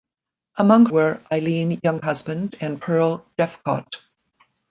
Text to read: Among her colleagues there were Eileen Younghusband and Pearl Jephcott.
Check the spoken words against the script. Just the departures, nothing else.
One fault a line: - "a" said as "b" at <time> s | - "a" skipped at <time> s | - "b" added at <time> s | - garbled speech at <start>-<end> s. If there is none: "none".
- "her colleagues there" skipped at 0.9 s